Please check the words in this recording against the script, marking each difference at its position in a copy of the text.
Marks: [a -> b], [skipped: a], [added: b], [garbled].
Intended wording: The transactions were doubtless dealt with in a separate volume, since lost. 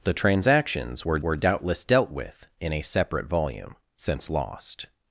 The transactions were [added: were] doubtless dealt with in a separate volume, since lost.